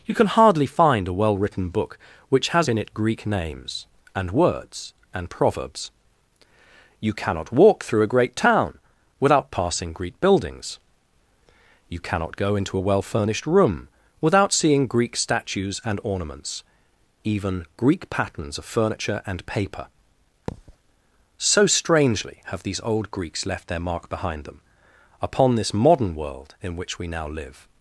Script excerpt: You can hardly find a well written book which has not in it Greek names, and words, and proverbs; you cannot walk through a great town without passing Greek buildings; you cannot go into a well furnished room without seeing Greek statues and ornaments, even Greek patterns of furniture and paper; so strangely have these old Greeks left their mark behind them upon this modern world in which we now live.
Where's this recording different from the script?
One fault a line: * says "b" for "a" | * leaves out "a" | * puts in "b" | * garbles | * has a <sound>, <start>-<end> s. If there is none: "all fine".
* leaves out "not"
* has a thud, 20.5-20.8 s